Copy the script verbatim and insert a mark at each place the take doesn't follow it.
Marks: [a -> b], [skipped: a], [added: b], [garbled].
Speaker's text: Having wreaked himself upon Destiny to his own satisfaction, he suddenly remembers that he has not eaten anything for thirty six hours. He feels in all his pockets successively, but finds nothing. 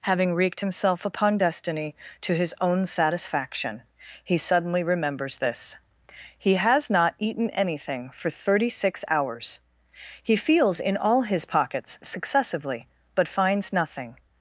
Having wreaked himself upon Destiny to his own satisfaction, he suddenly remembers [that -> this] he has not eaten anything for thirty six hours. He feels in all his pockets successively, but finds nothing.